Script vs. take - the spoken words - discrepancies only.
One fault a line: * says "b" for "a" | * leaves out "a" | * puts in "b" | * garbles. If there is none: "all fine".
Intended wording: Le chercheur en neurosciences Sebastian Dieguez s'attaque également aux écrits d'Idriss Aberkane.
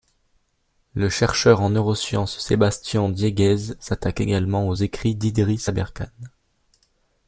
all fine